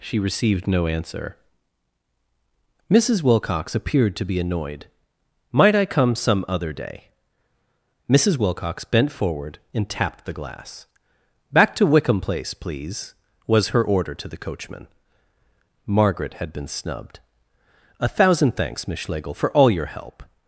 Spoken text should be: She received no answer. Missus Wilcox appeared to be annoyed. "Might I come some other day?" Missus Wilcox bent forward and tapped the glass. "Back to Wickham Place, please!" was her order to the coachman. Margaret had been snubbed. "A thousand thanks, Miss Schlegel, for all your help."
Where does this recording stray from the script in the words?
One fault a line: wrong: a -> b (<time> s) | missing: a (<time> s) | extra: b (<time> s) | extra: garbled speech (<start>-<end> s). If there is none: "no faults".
no faults